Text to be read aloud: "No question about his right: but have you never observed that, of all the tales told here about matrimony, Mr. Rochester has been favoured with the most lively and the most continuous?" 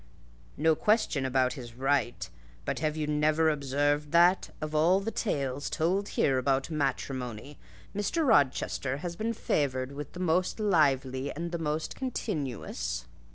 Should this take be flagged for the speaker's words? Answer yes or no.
no